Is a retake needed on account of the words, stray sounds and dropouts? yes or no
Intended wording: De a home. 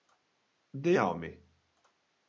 no